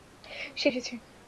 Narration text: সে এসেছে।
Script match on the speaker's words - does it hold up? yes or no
yes